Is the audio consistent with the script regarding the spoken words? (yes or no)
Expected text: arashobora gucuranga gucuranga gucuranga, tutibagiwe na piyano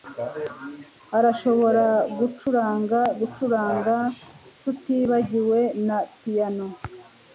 no